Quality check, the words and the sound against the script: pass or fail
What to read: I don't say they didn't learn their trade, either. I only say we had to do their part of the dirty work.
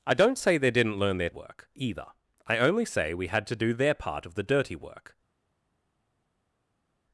fail